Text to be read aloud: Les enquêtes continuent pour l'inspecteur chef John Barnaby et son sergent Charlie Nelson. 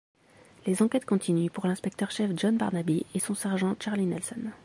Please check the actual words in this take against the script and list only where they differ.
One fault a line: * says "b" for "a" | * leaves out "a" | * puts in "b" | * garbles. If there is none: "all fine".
all fine